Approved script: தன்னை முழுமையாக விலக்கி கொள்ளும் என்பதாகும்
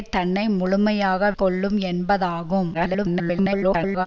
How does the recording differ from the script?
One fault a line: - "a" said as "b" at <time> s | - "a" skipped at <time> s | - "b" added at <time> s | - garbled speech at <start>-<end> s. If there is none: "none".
- "விலக்கி" skipped at 1.3 s
- garbled speech at 2.7-4.1 s